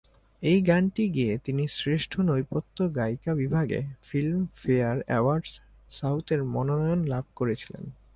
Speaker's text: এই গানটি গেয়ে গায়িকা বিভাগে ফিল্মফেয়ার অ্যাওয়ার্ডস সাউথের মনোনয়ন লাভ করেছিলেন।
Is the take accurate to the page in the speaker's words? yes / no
no